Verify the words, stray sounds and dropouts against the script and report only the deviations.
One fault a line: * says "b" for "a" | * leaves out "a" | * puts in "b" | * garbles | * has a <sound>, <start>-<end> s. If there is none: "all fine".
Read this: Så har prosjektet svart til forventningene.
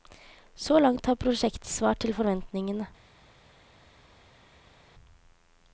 * puts in "langt"